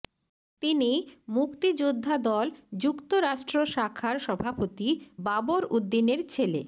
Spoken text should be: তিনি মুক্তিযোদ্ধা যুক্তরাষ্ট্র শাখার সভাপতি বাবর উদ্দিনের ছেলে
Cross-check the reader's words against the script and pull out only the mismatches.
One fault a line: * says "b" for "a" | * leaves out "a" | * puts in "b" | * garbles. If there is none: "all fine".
* puts in "দল"